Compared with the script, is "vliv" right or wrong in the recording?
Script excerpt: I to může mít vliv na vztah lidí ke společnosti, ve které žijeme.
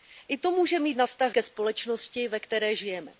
wrong